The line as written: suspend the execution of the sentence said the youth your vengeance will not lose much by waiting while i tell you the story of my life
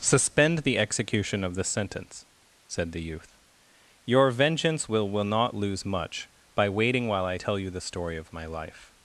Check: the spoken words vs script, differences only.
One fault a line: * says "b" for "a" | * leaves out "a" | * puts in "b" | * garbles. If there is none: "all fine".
* puts in "will"